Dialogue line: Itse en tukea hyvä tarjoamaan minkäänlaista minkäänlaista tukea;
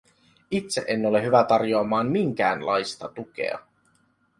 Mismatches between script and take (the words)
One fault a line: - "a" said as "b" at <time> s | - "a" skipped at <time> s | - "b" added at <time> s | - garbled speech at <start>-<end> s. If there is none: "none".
- "tukea" said as "ole" at 1.0 s
- "minkäänlaista" skipped at 3.1 s